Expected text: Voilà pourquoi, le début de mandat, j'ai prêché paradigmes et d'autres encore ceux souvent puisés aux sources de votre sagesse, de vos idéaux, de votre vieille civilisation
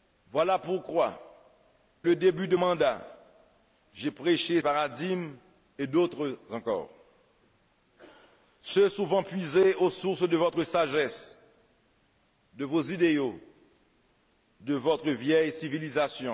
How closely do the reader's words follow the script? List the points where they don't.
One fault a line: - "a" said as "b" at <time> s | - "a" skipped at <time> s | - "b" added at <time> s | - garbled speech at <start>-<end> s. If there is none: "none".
none